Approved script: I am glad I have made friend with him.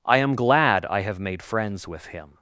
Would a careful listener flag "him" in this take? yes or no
no